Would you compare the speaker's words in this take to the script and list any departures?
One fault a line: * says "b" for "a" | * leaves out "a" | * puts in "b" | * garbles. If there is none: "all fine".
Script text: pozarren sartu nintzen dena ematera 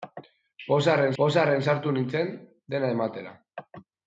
* puts in "pozarren"